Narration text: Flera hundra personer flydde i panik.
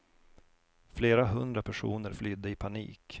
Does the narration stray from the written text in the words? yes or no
no